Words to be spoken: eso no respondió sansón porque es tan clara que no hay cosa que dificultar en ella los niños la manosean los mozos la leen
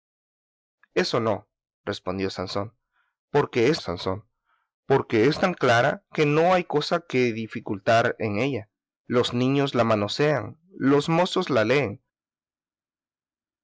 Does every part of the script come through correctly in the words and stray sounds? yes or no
no